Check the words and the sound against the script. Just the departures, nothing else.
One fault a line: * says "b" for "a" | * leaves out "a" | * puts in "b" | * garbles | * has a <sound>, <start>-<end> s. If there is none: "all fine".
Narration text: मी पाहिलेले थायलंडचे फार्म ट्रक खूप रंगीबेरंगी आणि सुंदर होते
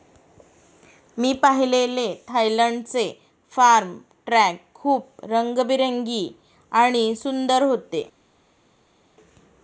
all fine